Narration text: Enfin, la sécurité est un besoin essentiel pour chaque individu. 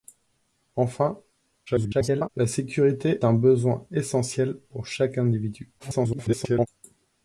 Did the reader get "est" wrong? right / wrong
wrong